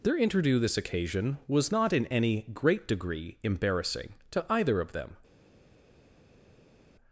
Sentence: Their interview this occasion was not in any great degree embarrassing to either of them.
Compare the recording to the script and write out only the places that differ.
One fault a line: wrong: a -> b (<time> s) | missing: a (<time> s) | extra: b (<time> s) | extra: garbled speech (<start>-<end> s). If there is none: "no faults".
no faults